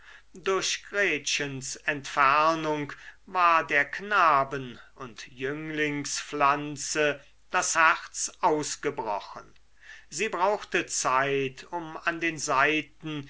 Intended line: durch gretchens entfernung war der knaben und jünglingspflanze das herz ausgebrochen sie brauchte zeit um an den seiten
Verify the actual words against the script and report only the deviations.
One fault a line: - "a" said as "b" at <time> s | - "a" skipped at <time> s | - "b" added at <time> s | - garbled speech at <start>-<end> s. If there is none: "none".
none